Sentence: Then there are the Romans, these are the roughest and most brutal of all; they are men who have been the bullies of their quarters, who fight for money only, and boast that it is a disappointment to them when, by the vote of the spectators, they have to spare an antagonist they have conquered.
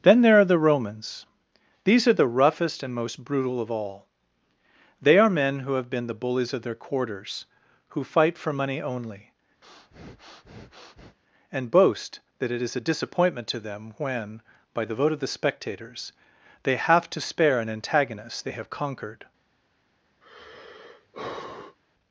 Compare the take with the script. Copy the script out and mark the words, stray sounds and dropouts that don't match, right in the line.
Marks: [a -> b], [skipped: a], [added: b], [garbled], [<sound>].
Then there are the Romans, these are the roughest and most brutal of all; they are men who have been the bullies of their quarters, who fight for money only, [breath] and boast that it is a disappointment to them when, by the vote of the spectators, they have to spare an antagonist they have conquered. [sigh]